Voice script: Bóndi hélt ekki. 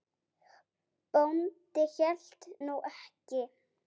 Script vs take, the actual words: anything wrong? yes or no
yes